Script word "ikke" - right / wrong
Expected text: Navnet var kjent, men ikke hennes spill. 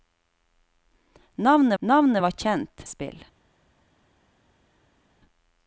wrong